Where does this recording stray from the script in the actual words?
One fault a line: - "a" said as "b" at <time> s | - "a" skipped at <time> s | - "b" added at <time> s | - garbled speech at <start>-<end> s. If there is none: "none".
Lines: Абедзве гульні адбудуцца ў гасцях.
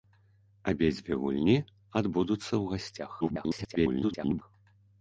- garbled speech at 3.2-4.4 s